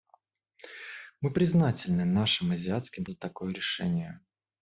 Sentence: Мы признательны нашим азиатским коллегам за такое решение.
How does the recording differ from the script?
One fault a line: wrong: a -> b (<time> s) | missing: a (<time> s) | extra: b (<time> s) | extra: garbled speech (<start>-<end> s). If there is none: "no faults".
missing: коллегам (3.0 s)